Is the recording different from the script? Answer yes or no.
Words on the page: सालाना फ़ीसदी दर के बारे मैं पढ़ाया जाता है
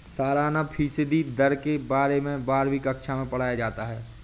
yes